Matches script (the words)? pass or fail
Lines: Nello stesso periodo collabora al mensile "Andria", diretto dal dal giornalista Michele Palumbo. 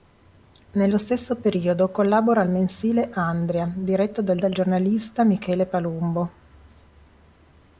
pass